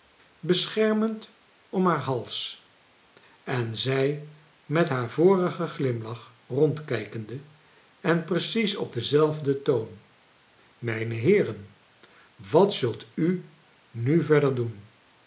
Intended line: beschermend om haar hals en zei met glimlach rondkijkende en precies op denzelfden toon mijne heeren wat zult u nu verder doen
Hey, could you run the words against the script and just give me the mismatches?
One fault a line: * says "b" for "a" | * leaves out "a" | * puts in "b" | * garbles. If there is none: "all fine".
* puts in "haar vorigen"